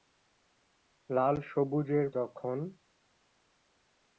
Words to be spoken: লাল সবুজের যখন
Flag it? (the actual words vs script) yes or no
no